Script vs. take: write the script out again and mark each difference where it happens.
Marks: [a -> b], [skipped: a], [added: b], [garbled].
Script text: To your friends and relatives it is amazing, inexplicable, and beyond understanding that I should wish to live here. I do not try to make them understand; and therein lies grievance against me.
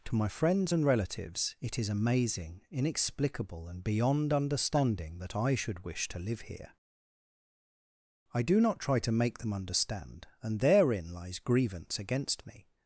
To [your -> my] friends and relatives it is amazing, inexplicable, and beyond understanding that I should wish to live here. I do not try to make them understand; and therein lies grievance against me.